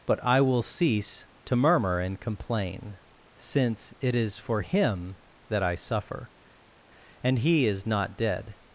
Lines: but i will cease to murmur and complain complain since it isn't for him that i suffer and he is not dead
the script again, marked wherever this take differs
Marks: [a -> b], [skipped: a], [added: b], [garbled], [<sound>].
but i will cease to murmur and complain [skipped: complain] since it [isn't -> is] for him that i suffer and he is not dead